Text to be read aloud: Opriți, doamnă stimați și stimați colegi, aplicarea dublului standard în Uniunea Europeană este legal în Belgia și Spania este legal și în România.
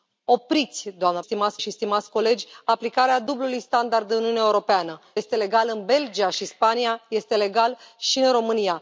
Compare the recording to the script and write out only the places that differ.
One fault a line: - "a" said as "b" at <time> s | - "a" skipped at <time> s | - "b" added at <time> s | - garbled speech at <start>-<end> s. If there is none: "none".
none